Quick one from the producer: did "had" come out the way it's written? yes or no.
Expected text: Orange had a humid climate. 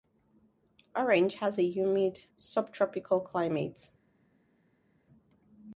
no